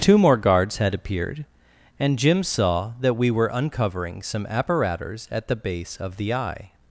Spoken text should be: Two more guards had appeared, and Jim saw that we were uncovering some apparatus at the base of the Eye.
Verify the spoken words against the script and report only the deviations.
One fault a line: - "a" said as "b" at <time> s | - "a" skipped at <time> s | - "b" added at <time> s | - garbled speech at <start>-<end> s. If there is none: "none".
none